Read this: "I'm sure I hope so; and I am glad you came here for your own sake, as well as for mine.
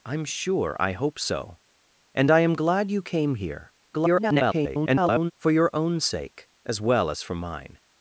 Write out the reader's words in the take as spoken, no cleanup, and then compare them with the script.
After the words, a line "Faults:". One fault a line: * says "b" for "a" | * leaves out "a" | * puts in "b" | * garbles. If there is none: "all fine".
"I'm sure I hope so; and I am glad you came here [garbled] for your own sake, as well as for mine.
Faults:
* garbles